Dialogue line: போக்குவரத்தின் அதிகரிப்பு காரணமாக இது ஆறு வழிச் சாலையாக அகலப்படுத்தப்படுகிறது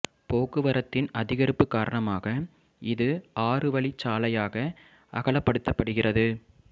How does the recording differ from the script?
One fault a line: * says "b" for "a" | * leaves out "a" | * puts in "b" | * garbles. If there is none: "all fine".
all fine